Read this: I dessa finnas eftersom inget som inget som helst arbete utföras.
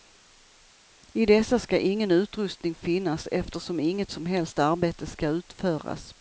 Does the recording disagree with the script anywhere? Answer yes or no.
yes